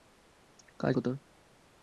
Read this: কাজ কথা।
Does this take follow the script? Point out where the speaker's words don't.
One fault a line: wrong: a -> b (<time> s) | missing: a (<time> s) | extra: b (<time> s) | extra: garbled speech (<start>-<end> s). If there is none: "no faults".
no faults